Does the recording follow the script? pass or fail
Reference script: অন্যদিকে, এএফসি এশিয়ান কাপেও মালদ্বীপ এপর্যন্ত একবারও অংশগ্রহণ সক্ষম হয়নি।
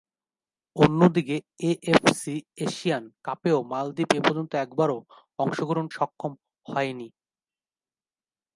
pass